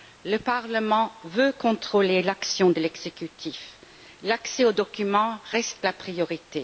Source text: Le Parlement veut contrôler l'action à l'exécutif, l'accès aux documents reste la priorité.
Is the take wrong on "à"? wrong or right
wrong